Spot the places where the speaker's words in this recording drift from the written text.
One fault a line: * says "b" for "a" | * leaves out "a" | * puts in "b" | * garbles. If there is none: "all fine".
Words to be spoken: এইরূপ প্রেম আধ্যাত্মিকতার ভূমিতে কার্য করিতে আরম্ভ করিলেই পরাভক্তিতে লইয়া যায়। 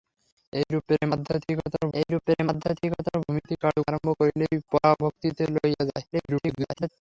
* puts in "এইরূপ প্রেম আধ্যাত্মিকতার"
* leaves out "করিতে"
* garbles